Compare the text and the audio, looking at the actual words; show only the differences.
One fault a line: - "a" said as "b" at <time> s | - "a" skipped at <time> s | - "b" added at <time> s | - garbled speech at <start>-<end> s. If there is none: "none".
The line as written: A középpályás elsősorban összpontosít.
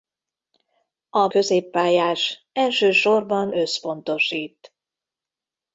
none